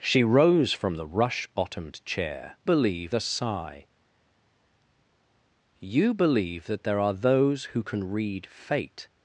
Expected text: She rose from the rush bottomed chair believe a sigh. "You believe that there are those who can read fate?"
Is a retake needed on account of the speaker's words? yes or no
no